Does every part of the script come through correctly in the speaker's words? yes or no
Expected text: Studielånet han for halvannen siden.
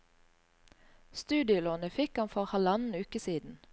no